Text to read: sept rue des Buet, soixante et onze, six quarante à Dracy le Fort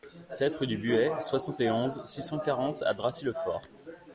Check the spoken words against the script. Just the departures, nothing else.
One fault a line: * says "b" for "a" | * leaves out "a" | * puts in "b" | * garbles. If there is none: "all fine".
* says "du" for "des"
* puts in "cent"